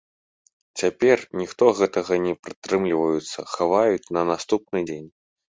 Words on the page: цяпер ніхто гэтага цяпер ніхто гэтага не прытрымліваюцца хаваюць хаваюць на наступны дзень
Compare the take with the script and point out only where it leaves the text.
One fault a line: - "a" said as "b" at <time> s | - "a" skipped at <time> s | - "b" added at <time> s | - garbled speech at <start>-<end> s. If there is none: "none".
- "цяпер ніхто гэтага" skipped at 2.1 s
- "хаваюць" skipped at 4.1 s